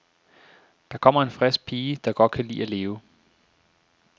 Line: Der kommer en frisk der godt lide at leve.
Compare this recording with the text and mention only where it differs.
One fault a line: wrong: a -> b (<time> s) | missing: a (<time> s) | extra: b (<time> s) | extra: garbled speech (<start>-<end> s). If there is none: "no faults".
extra: pige (1.6 s)
extra: kan (2.3 s)